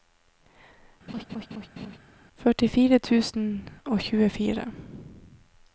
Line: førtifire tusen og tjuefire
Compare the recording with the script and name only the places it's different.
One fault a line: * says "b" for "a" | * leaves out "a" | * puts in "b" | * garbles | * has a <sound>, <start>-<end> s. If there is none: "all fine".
* has a laugh, 1.1-2.0 s